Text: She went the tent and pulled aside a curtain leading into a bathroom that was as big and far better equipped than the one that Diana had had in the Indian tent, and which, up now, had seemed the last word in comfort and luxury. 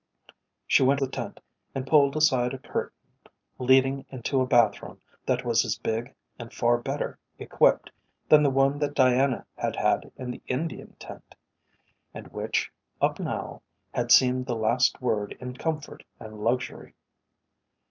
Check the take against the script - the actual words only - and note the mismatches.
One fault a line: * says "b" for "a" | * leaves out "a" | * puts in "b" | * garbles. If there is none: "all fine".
all fine